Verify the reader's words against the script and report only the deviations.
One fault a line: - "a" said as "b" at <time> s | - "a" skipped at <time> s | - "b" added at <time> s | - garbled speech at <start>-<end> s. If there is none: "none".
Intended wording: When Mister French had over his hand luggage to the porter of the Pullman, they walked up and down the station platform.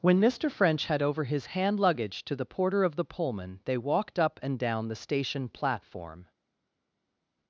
none